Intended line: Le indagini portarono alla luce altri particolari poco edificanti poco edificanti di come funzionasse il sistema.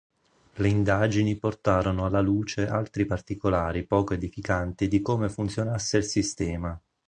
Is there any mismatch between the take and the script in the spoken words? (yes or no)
yes